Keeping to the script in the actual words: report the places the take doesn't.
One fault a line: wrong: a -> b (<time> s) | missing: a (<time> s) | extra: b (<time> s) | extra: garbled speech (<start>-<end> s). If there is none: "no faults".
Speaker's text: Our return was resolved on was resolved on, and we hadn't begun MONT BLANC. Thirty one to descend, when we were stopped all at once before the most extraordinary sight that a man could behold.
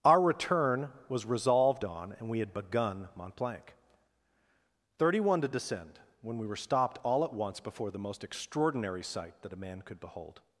missing: was resolved on (2.1 s)
wrong: hadn't -> had (2.4 s)